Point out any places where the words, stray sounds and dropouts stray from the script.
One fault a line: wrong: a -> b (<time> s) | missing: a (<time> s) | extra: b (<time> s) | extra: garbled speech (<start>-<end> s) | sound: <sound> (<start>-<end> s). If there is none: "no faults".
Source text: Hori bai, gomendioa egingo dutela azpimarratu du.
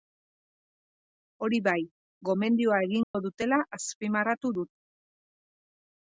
sound: dropout (3.0-3.1 s)